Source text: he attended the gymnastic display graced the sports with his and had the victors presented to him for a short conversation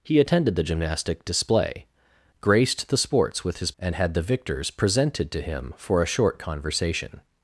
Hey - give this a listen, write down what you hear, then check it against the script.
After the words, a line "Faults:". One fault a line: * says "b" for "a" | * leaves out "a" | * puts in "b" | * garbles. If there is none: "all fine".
he attended the gymnastic display graced the sports with his and had the victors presented to him for a short conversation
Faults:
all fine